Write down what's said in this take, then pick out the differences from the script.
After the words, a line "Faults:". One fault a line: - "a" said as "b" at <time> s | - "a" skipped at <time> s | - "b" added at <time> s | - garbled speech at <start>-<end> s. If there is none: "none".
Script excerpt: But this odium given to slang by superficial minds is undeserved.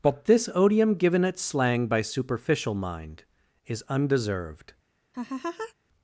But this odium given at slang by superficial mind is undeserved.
Faults:
- "to" said as "at" at 1.2 s
- "minds" said as "mind" at 2.7 s